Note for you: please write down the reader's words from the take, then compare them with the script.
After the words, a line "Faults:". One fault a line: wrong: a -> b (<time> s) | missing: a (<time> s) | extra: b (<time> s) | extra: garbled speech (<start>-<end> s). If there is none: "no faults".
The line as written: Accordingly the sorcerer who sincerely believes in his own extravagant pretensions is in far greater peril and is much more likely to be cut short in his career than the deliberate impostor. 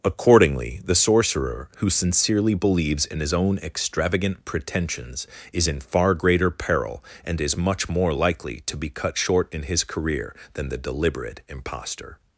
Accordingly the sorcerer who sincerely believes in his own extravagant pretensions is in far greater peril and is much more likely to be cut short in his career than the deliberate impostor.
Faults:
no faults